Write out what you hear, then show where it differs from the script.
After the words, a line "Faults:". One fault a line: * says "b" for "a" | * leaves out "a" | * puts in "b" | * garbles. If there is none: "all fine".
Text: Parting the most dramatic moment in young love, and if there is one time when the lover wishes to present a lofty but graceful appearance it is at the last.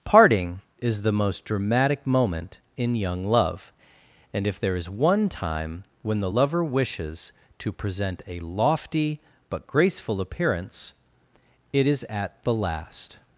Parting is the most dramatic moment in young love, and if there is one time when the lover wishes to present a lofty but graceful appearance it is at the last.
Faults:
* puts in "is"